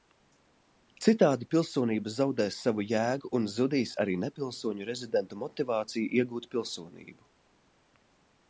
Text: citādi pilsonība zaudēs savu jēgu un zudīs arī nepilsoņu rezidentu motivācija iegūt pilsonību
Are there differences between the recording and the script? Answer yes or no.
no